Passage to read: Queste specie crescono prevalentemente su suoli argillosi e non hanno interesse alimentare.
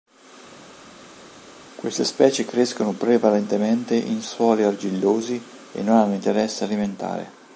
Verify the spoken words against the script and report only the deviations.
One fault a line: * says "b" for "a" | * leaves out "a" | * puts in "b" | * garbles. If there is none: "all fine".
* says "in" for "su"